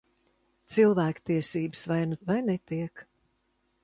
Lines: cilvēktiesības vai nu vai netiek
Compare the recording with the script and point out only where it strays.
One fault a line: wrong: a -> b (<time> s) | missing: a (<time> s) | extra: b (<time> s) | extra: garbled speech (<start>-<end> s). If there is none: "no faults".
no faults